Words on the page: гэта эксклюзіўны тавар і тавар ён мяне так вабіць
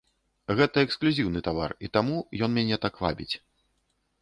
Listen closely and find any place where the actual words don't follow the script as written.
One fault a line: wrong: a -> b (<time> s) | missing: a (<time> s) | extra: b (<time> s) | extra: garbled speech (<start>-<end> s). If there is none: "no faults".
wrong: тавар -> таму (2.0 s)